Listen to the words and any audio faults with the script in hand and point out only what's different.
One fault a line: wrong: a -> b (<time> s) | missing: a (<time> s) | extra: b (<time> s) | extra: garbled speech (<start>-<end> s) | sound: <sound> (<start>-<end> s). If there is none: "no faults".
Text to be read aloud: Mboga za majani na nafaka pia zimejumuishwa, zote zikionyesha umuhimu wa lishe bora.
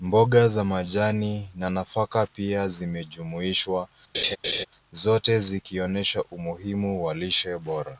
sound: laugh (4.1-4.7 s)